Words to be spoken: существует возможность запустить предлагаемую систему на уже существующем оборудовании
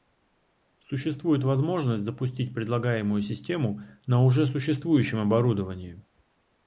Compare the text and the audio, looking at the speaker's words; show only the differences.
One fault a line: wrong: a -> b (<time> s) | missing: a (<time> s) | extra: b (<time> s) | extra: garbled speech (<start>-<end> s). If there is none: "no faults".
no faults